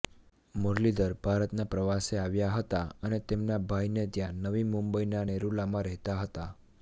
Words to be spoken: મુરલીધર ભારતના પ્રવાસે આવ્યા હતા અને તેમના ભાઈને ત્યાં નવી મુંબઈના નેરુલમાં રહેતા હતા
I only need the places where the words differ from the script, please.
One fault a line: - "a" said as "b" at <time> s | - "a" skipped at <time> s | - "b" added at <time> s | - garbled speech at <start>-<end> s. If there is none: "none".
none